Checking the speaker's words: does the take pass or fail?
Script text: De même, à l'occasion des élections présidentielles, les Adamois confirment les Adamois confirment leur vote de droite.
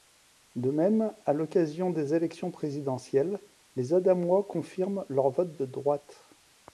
fail